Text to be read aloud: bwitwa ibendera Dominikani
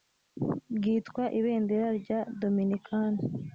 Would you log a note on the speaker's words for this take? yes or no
yes